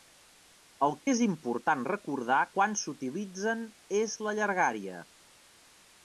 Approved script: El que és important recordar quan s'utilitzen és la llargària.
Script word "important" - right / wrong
right